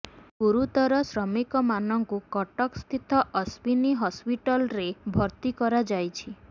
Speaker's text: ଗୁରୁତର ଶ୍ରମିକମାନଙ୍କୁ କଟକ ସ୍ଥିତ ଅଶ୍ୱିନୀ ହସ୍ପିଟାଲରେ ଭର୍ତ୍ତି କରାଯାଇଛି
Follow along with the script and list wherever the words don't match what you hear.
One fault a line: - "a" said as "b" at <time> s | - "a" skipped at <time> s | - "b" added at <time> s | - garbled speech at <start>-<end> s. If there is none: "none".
none